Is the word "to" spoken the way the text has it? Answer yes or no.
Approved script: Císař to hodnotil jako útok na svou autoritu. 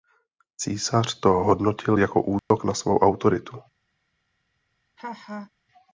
yes